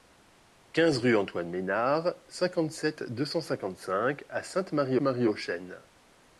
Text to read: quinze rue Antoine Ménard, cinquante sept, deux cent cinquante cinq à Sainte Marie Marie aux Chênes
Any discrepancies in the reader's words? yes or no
no